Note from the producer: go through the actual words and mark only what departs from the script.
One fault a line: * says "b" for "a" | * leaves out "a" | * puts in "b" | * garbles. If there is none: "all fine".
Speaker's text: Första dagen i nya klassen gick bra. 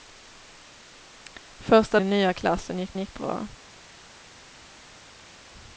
* leaves out "dagen"
* puts in "gick"